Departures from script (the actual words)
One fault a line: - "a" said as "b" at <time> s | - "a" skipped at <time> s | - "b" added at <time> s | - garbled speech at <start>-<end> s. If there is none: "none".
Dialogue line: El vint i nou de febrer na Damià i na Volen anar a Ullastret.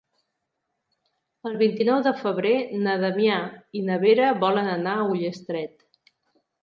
- "Vera" added at 4.0 s